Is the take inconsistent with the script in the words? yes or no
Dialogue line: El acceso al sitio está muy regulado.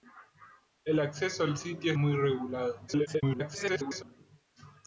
yes